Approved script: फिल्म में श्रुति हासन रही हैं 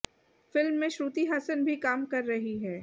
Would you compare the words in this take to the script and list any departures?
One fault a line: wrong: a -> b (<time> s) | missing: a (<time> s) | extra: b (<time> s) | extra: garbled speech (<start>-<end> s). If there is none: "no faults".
extra: भी काम कर (1.6 s)